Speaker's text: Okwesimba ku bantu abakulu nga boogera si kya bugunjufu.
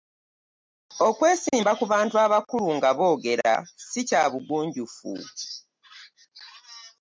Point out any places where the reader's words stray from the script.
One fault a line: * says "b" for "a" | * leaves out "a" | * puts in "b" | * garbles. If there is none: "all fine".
all fine